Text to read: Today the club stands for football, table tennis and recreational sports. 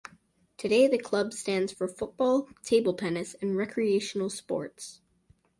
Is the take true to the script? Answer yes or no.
yes